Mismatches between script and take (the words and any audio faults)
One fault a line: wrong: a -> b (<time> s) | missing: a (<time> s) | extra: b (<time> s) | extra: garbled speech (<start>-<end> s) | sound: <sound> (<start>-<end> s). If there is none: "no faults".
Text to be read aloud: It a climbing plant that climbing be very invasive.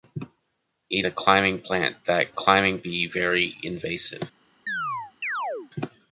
sound: chirp (4.7-5.7 s)